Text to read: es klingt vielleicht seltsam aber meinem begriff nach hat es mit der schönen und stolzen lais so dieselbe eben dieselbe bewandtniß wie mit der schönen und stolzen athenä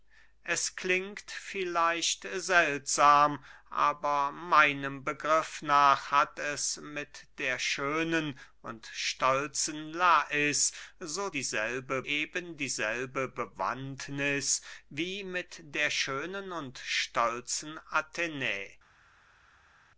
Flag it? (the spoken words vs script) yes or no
no